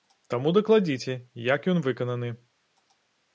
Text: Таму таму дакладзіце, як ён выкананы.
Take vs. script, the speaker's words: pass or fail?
fail